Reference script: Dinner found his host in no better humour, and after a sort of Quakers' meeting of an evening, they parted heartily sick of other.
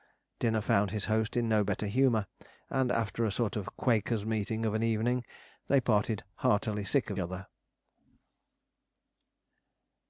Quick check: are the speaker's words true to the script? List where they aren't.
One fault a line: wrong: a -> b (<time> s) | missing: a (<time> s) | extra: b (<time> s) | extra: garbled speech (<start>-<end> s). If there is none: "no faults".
no faults